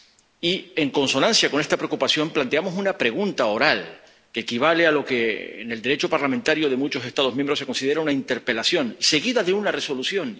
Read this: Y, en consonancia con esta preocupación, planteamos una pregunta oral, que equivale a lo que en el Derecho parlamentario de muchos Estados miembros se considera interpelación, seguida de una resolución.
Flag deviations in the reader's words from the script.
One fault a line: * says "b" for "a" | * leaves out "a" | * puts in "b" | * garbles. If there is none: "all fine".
* puts in "una"